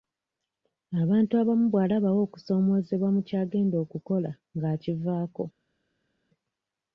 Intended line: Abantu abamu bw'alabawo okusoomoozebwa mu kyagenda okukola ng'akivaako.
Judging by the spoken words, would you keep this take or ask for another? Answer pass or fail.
pass